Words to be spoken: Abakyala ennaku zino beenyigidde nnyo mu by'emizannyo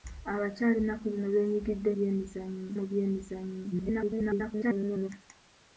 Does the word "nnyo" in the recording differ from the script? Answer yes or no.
yes